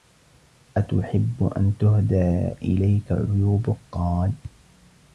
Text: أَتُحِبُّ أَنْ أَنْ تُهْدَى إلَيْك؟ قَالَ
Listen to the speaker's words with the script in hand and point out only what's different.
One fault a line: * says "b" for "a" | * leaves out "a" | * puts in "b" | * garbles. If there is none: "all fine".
* leaves out "أَنْ"
* puts in "عُيُوبُك"